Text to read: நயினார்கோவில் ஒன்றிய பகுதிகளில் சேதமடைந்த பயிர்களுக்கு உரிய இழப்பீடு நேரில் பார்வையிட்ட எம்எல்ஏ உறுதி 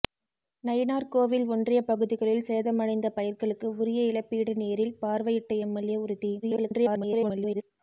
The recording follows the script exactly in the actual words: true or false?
false